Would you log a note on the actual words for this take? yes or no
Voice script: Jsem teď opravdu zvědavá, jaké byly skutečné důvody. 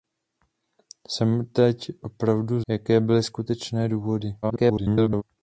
yes